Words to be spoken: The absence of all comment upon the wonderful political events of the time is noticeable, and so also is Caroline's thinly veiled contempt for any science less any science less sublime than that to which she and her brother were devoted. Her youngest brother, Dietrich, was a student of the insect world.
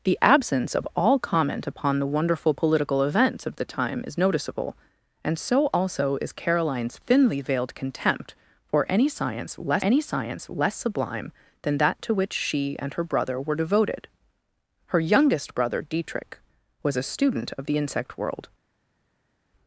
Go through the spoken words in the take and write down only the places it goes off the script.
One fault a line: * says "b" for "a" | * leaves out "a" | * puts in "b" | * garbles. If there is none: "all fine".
all fine